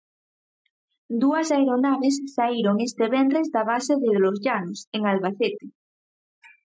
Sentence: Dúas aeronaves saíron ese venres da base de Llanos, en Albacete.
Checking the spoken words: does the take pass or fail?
fail